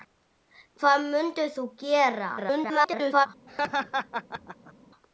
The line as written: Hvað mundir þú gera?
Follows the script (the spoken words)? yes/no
no